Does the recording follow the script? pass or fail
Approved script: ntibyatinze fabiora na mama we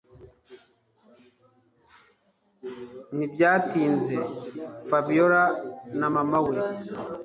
pass